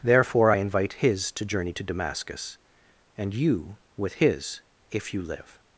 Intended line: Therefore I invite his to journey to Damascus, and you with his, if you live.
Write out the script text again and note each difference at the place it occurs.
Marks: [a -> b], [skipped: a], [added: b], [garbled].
Therefore I invite his to journey to Damascus, and you with his, if you live.